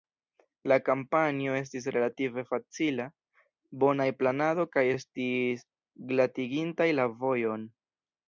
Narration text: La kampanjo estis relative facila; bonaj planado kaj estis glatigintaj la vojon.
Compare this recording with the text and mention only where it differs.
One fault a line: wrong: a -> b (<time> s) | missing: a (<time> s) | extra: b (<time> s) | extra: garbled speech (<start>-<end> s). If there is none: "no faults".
no faults